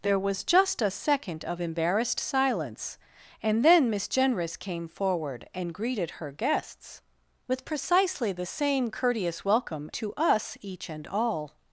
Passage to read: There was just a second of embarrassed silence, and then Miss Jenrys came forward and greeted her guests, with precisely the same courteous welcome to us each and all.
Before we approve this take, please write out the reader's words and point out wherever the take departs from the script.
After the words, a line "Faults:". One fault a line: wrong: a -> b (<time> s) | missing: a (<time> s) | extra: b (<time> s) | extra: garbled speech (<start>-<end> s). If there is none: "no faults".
There was just a second of embarrassed silence, and then Miss Jenrys came forward and greeted her guests, with precisely the same courteous welcome to us each and all.
Faults:
no faults